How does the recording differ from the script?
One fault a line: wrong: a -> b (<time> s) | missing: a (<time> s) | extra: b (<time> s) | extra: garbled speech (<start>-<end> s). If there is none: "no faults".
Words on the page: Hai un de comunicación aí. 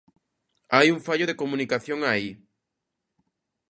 extra: fallo (1.1 s)